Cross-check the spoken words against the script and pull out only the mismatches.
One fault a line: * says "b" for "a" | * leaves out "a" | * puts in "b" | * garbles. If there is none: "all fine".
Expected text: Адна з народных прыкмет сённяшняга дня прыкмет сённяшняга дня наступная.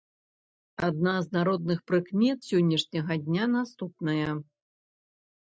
* leaves out "прыкмет сённяшняга дня"